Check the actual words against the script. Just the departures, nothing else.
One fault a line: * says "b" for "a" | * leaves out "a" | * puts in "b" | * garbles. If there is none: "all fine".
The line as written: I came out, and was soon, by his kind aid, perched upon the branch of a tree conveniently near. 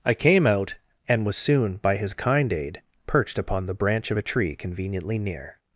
all fine